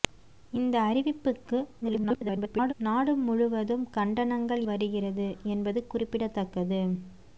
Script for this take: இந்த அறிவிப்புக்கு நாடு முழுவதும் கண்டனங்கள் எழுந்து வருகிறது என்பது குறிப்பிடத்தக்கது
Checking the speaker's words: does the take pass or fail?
fail